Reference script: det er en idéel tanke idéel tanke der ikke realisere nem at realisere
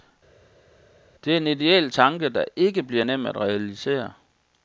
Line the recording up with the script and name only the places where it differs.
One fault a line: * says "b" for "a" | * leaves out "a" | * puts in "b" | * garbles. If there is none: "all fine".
* leaves out "idéel tanke"
* says "bliver" for "realisere"